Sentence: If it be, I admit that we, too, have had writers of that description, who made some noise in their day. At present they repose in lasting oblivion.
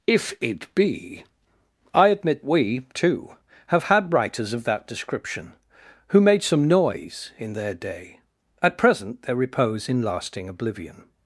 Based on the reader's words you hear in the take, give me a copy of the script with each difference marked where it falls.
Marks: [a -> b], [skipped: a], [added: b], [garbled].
If it be, I admit [skipped: that] we, too, have had writers of that description, who made some noise in their day. At present they repose in lasting oblivion.